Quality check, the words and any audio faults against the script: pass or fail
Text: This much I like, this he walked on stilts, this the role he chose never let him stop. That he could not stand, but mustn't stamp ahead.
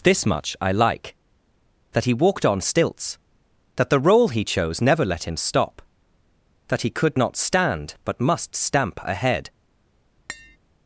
fail